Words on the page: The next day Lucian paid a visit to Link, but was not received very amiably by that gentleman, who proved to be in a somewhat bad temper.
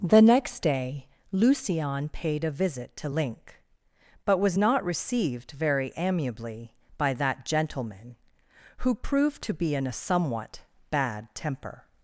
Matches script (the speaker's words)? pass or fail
pass